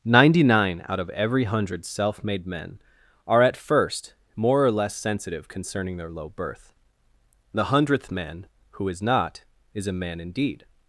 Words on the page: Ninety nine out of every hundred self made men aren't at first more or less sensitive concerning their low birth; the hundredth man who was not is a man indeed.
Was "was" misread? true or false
true